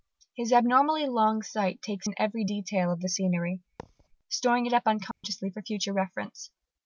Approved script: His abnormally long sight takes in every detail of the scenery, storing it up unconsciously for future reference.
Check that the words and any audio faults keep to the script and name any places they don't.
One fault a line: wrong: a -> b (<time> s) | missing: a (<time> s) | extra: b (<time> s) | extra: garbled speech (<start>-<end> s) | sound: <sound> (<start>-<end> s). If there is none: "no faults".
sound: thud (3.8-4.1 s)
sound: dropout (5.1-5.2 s)